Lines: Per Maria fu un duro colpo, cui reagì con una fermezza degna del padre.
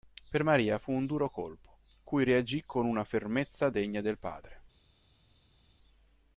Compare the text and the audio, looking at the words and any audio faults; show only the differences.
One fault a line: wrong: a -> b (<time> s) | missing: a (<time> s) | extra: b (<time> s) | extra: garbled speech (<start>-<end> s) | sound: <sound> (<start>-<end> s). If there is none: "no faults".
no faults